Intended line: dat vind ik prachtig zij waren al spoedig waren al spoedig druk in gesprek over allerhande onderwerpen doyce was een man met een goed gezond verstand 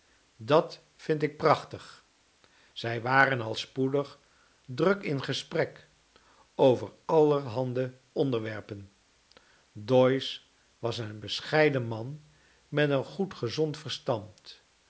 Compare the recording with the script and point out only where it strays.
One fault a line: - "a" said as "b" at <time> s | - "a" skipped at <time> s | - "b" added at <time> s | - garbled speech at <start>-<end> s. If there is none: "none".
- "waren al spoedig" skipped at 4.2 s
- "bescheiden" added at 11.2 s